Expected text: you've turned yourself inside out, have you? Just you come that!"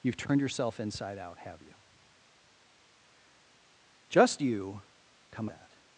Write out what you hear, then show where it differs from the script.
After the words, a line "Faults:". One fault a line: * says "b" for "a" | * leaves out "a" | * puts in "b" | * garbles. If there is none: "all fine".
you've turned yourself inside out, have you? Just you come that!"
Faults:
all fine